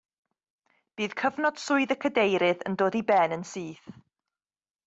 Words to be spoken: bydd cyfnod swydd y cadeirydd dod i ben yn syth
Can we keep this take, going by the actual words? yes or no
no